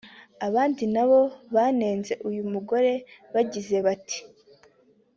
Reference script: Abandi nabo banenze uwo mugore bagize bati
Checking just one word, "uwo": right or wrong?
wrong